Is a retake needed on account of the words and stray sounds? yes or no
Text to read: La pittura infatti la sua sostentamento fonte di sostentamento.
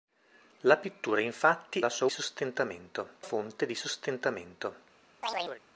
yes